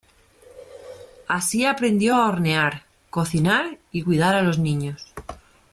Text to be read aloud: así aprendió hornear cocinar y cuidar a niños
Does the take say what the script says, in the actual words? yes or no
no